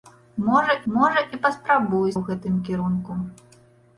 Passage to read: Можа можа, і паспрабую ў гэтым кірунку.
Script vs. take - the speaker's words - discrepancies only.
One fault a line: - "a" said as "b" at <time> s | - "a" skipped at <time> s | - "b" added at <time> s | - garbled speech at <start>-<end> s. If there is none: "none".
none